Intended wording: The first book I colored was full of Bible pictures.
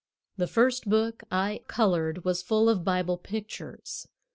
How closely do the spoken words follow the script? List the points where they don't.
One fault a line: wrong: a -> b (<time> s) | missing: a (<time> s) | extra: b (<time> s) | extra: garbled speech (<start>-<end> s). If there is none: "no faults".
no faults